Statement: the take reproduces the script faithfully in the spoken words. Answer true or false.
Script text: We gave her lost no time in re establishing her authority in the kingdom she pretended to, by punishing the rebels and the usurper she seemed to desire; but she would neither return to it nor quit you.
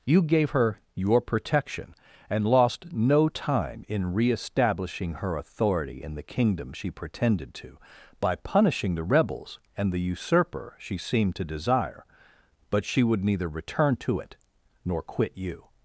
false